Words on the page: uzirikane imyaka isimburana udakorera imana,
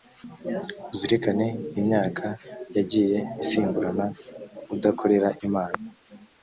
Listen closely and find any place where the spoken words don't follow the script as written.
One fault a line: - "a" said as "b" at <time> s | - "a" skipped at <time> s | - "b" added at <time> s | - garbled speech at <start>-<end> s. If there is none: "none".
- "yagiye" added at 2.8 s